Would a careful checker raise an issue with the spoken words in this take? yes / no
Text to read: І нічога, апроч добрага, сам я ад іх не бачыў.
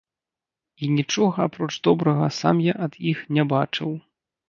no